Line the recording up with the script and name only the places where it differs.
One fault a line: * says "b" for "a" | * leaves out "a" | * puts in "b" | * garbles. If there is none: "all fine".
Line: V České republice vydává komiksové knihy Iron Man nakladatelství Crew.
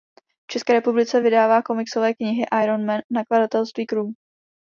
all fine